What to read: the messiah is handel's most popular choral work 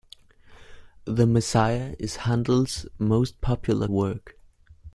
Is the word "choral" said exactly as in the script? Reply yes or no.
no